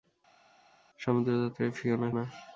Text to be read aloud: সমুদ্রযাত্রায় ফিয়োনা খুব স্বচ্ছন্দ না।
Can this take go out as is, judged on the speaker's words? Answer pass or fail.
fail